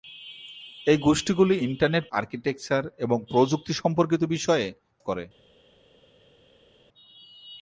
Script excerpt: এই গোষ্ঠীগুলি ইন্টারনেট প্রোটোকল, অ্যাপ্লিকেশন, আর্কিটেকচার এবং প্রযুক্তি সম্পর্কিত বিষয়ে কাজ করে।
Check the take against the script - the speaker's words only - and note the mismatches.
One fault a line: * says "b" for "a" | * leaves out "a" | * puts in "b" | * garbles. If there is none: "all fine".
* leaves out "প্রোটোকল অ্যাপ্লিকেশন"
* leaves out "কাজ"